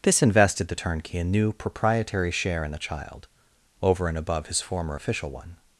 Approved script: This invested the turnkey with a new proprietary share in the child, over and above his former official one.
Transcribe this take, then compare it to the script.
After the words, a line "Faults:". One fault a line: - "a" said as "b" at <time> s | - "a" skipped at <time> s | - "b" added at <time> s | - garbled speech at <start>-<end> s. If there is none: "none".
This invested the turnkey a new proprietary share in the child, over and above his former official one.
Faults:
- "with" skipped at 1.2 s